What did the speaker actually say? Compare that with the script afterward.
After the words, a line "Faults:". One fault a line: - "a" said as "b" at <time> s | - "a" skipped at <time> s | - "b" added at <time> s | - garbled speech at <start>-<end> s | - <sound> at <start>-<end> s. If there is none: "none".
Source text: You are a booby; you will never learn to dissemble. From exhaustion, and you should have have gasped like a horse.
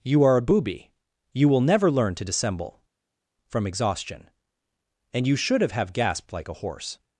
You are a booby; you will never learn to dissemble. From exhaustion, and you should have have gasped like a horse.
Faults:
none